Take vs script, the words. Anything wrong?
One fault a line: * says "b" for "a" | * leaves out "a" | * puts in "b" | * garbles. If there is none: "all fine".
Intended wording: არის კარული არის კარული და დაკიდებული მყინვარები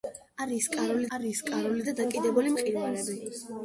all fine